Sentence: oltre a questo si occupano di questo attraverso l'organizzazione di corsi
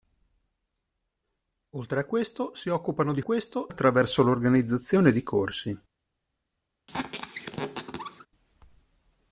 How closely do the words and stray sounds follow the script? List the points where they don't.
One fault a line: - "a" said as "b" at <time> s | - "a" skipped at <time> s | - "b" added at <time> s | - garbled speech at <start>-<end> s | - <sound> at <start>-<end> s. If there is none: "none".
- squeak at 6.9-8.3 s